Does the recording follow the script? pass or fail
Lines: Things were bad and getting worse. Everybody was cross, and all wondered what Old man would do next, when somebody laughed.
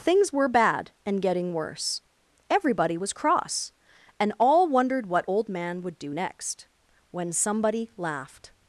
pass